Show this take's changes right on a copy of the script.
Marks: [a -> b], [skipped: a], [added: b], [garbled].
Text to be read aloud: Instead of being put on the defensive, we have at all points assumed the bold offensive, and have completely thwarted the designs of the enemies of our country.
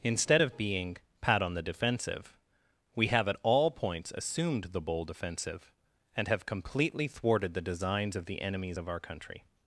Instead of being [put -> pat] on the defensive, we have at all points assumed the bold offensive, and have completely thwarted the designs of the enemies of our country.